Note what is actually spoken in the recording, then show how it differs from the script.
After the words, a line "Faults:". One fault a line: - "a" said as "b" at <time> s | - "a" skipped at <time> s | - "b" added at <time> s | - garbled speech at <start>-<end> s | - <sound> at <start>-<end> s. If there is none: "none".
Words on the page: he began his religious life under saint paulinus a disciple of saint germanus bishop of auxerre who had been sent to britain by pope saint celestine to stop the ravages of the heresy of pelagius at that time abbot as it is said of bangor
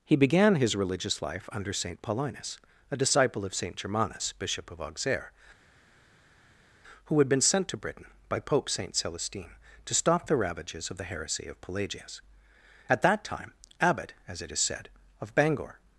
he began his religious life under saint paulinus a disciple of saint germanus bishop of auxerre who had been sent to britain by pope saint celestine to stop the ravages of the heresy of pelagius at that time abbot as it is said of bangor
Faults:
none